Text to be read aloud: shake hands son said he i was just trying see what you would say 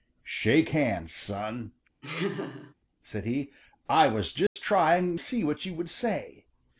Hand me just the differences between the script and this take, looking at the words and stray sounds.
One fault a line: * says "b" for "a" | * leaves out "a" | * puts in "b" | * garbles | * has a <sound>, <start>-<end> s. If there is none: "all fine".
* has a laugh, 2.0-2.7 s
* has a dropout, 4.5-4.6 s